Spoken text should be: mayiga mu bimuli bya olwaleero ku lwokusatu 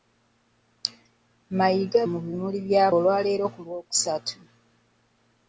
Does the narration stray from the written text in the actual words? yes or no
no